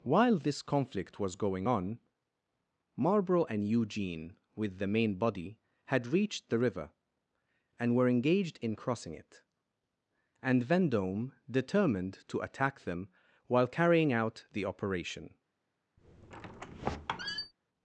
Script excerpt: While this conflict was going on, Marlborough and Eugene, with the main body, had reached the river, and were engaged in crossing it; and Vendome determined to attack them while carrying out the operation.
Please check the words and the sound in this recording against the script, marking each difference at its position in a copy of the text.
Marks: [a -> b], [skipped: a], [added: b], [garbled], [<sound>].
While this conflict was going on, Marlborough and Eugene, with the main body, had reached the river, and were engaged in crossing it; and Vendome determined to attack them while carrying out the operation. [squeak]